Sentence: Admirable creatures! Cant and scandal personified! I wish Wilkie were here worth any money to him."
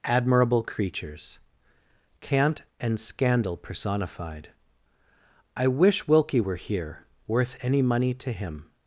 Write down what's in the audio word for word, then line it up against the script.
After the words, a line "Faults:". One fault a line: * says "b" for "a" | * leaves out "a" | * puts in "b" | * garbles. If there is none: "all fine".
Admirable creatures! Cant and scandal personified! I wish Wilkie were here worth any money to him."
Faults:
all fine